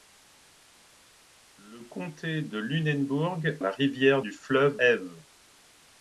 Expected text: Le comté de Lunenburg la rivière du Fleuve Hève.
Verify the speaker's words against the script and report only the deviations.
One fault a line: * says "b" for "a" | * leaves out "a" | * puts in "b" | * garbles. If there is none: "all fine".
all fine